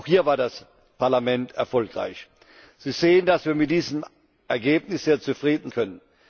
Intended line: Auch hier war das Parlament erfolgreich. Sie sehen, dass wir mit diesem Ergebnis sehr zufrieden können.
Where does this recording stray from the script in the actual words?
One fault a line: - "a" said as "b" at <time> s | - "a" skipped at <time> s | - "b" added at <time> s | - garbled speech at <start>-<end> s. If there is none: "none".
none